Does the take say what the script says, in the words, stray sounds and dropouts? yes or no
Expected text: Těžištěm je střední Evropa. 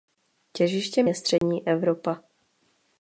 no